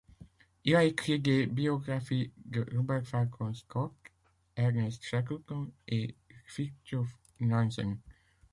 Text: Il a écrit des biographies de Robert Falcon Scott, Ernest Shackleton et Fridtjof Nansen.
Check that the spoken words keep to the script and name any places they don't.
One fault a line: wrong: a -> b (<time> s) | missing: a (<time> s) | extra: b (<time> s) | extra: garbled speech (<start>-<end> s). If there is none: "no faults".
no faults